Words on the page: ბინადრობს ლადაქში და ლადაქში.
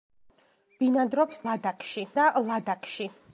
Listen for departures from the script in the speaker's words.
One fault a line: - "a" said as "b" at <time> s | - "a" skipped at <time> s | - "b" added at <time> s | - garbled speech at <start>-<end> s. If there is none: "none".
none